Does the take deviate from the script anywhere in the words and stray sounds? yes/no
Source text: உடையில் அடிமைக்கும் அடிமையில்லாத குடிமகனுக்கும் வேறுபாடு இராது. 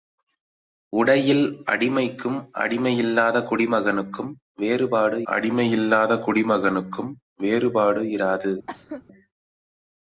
yes